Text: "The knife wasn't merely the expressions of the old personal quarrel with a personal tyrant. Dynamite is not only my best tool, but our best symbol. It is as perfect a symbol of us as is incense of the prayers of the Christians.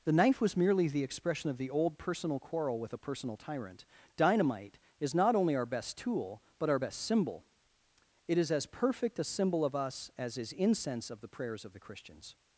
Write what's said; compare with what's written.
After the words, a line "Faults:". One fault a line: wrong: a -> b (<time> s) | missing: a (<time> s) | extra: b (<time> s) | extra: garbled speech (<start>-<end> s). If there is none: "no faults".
"The knife was merely the expression of the old personal quarrel with a personal tyrant. Dynamite is not only our best tool, but our best symbol. It is as perfect a symbol of us as is incense of the prayers of the Christians.
Faults:
wrong: wasn't -> was (0.4 s)
wrong: expressions -> expression (1.0 s)
wrong: my -> our (5.5 s)